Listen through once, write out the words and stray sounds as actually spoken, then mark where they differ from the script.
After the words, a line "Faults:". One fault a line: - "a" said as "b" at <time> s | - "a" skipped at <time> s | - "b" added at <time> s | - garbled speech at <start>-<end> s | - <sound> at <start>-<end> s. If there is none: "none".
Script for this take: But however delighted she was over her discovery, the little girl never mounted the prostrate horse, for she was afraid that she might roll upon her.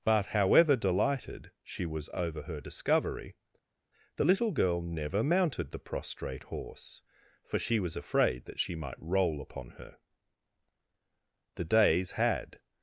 But however delighted she was over her discovery, the little girl never mounted the prostrate horse, for she was afraid that she might roll upon her. The days had
Faults:
- "The days had" added at 11.6 s